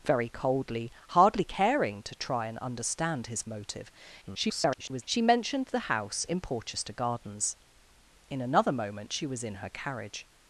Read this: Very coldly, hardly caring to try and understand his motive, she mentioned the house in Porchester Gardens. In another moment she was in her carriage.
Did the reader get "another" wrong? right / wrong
right